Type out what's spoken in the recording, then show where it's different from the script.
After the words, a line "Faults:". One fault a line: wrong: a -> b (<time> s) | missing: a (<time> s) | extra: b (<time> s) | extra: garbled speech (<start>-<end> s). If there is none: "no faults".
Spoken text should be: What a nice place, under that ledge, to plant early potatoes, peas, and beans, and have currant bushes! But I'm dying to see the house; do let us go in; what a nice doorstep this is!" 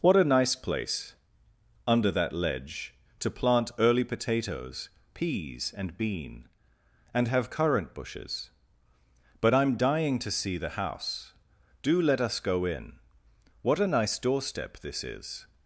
What a nice place, under that ledge, to plant early potatoes, peas, and bean, and have currant bushes! But I'm dying to see the house; do let us go in; what a nice doorstep this is!"
Faults:
wrong: beans -> bean (6.0 s)